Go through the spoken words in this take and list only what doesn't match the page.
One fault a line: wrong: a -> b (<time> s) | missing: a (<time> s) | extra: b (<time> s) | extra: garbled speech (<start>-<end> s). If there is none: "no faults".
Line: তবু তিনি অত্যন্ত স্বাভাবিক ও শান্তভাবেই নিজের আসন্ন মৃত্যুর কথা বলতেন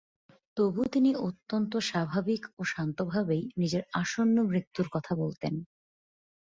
no faults